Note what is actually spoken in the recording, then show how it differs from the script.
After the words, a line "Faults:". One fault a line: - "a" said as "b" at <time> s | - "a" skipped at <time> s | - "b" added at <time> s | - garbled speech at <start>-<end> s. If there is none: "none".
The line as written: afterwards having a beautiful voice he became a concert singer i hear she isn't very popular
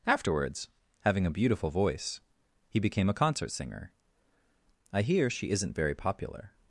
afterwards having a beautiful voice he became a concert singer i hear she isn't very popular
Faults:
none